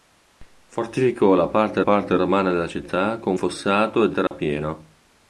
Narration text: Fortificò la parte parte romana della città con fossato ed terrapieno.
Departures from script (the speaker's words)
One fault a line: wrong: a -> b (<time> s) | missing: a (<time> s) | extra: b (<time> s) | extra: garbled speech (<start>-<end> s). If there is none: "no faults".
no faults